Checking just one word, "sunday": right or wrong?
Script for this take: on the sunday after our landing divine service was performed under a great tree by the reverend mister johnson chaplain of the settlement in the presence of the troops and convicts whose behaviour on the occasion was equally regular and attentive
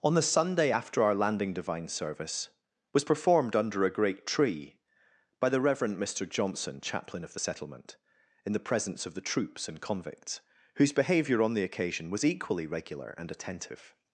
right